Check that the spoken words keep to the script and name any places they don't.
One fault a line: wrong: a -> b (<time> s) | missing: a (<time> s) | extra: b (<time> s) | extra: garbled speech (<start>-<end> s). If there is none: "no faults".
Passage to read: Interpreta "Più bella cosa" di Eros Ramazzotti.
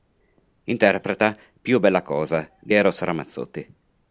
no faults